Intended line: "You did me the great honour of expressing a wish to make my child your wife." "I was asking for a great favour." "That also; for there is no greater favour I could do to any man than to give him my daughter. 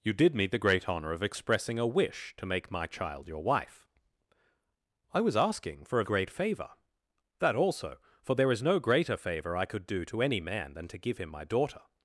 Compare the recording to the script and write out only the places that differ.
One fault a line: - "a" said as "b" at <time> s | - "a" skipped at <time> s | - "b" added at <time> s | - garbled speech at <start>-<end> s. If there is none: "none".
none